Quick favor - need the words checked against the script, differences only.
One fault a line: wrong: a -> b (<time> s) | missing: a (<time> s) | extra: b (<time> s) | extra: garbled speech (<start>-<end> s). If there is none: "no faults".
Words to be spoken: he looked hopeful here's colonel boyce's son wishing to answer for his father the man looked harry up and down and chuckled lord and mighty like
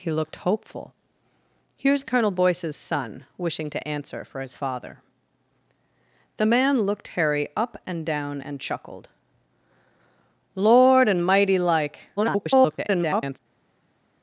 extra: garbled speech (12.2-13.4 s)